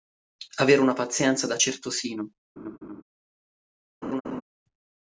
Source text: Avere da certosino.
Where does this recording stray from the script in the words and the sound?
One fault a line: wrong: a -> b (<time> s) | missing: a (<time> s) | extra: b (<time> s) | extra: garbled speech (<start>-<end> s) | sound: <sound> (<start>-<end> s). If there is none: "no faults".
extra: una pazienza (0.8 s)
sound: laugh (2.6-3.0 s)
sound: laugh (4.0-4.4 s)